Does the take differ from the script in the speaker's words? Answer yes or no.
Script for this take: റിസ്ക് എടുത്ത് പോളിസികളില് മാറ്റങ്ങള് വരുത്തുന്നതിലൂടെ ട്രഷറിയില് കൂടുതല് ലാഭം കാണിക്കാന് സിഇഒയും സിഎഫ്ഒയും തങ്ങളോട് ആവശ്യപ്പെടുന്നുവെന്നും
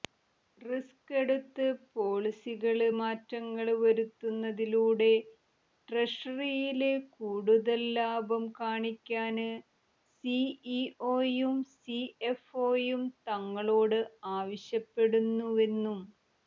no